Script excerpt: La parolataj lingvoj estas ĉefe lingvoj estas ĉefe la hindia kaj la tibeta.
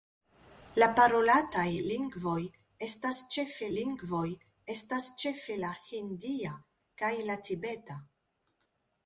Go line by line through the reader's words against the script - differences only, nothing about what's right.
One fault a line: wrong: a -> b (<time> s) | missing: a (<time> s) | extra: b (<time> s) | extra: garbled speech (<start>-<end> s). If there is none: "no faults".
no faults